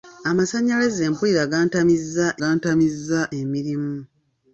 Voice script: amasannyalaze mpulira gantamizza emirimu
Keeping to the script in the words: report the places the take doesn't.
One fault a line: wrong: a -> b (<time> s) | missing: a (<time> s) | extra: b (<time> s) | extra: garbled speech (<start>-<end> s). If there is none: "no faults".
extra: gantamizza (2.4 s)